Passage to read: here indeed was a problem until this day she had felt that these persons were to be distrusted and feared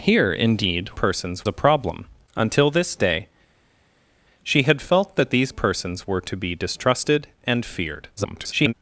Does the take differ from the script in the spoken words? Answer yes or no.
yes